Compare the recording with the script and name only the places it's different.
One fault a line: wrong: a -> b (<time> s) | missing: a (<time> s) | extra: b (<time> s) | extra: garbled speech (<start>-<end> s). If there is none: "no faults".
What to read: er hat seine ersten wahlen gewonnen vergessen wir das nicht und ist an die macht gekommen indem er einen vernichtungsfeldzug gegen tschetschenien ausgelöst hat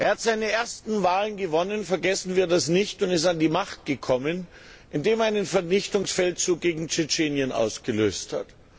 no faults